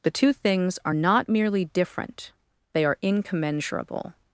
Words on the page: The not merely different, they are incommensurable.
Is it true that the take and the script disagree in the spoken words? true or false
true